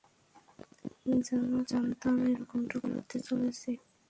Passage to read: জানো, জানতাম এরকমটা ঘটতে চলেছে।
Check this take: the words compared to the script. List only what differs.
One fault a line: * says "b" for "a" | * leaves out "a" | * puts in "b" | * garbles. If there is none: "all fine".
all fine